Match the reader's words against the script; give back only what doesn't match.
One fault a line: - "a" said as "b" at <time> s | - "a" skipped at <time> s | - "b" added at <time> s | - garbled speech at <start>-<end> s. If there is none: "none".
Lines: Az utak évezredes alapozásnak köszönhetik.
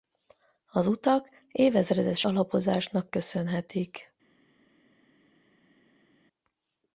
none